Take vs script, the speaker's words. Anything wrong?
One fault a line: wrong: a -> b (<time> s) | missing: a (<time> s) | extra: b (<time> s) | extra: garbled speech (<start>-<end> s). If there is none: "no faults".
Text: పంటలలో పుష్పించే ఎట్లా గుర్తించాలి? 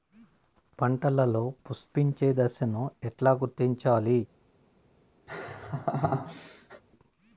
extra: దశను (2.3 s)